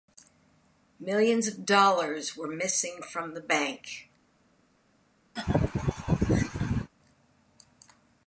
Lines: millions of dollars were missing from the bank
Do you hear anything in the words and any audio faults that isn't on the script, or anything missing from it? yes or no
yes